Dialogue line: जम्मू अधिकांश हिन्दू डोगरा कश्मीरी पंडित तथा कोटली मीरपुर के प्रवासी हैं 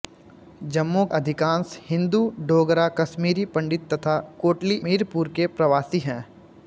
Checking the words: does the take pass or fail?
pass